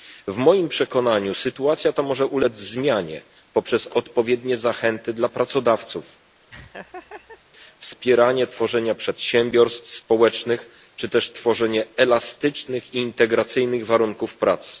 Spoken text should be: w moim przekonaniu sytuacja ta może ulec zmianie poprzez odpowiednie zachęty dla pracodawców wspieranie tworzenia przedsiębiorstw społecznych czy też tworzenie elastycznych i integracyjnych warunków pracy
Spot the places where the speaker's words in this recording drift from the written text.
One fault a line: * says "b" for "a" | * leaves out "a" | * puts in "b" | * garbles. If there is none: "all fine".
all fine